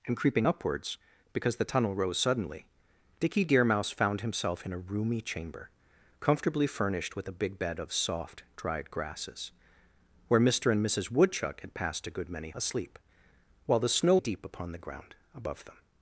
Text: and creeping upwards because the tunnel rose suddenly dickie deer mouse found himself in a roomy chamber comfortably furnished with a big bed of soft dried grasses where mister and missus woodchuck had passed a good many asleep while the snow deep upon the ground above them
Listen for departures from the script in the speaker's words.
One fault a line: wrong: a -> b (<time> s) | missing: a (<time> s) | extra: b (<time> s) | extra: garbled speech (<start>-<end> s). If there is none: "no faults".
no faults